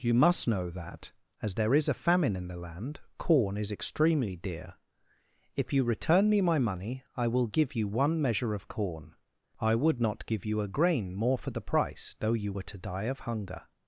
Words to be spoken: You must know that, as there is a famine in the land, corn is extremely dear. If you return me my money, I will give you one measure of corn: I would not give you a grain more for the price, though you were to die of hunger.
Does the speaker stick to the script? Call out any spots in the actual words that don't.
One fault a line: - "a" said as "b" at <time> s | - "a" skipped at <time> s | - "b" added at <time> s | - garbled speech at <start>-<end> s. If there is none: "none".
none